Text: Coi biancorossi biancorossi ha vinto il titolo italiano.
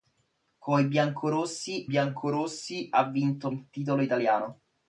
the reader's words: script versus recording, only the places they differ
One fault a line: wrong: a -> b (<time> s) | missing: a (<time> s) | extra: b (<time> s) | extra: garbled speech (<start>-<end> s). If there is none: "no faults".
no faults